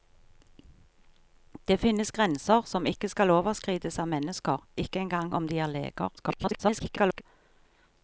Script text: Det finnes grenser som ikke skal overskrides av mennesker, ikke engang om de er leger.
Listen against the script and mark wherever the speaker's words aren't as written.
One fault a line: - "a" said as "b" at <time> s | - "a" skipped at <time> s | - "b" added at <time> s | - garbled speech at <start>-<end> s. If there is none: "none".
- garbled speech at 6.2-7.2 s